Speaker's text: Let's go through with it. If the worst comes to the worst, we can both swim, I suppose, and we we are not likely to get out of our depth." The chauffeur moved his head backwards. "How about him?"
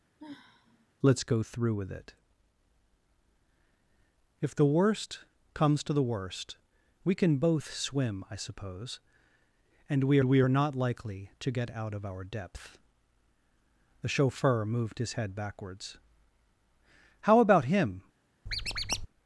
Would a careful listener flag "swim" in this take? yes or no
no